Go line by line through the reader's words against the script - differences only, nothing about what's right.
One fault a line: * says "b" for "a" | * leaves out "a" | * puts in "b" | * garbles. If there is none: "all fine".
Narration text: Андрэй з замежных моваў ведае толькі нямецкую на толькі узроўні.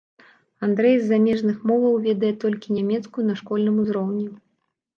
* says "школьным" for "толькі"